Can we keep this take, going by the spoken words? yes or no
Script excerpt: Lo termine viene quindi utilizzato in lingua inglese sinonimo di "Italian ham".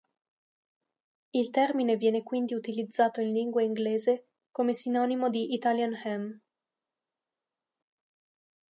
no